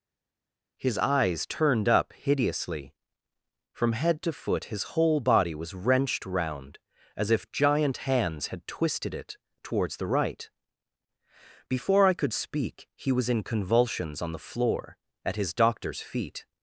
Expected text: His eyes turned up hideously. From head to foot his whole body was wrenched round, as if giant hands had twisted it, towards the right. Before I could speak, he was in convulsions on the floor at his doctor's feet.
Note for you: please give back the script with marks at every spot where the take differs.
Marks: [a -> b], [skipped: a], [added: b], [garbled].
His eyes turned up hideously. From head to foot his whole body was wrenched round, as if giant hands had twisted it, towards the right. Before I could speak, he was in convulsions on the floor at his doctor's feet.